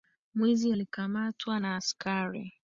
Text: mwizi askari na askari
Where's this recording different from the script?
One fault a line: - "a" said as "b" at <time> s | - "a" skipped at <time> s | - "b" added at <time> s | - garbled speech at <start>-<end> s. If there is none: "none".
- "askari" said as "alikamatwa" at 0.7 s